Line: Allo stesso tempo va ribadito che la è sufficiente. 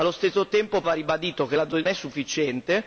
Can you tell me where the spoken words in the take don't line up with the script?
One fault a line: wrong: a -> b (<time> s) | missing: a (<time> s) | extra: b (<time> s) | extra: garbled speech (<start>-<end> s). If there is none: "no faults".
no faults